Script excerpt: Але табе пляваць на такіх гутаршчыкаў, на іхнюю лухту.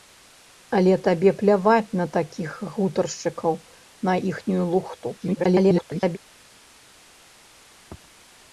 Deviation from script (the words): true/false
true